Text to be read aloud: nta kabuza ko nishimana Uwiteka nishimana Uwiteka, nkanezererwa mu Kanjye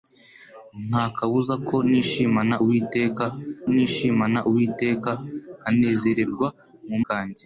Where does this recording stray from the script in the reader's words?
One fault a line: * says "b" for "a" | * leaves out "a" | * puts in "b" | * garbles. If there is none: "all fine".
all fine